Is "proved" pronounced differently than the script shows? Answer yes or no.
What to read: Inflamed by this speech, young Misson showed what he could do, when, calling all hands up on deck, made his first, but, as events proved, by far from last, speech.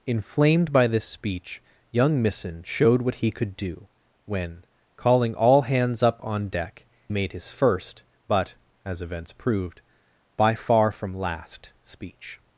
no